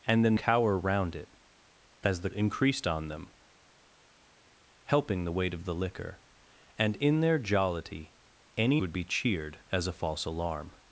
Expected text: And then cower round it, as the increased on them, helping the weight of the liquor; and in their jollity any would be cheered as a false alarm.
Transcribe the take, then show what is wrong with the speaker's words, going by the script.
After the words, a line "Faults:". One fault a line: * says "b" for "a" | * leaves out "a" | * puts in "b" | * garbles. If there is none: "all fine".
And then cower round it, as the increased on them, helping the weight of the liquor; and in their jollity any would be cheered as a false alarm.
Faults:
all fine